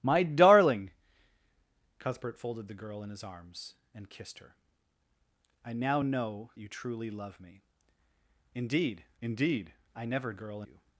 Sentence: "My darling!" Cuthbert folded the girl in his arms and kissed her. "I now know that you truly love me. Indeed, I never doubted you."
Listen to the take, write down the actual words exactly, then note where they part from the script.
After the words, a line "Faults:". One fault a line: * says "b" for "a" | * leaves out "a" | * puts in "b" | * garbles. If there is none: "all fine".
"My darling!" Cuthbert folded the girl in his arms and kissed her. "I now know you truly love me. Indeed indeed, I never girl you."
Faults:
* leaves out "that"
* puts in "indeed"
* says "girl" for "doubted"